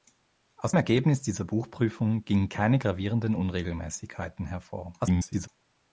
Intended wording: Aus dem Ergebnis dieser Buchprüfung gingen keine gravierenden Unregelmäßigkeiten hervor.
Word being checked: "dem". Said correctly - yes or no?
no